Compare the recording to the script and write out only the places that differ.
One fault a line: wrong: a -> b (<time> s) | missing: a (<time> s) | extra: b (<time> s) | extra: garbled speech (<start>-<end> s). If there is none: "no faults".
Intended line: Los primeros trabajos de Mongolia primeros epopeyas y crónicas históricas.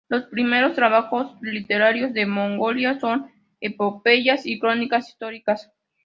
extra: literarios (1.4 s)
wrong: primeros -> son (3.0 s)